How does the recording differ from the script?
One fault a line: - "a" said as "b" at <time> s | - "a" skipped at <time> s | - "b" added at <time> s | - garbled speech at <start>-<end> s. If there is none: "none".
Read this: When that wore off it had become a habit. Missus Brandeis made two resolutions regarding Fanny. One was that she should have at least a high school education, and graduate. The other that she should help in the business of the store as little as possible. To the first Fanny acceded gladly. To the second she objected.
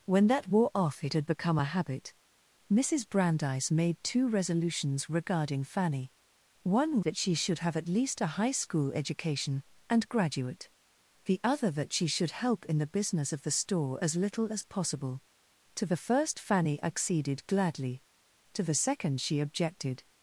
- "was" skipped at 7.0 s